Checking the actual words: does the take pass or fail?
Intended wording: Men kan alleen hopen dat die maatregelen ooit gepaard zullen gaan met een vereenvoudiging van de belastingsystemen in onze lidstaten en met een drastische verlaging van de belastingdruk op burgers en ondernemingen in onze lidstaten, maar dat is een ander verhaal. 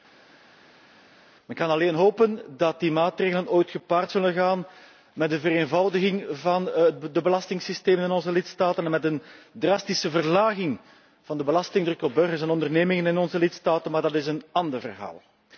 pass